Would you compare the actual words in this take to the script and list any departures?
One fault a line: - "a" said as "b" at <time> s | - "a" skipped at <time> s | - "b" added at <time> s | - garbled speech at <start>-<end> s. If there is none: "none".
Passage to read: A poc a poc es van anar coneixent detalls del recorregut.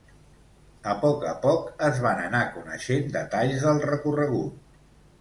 none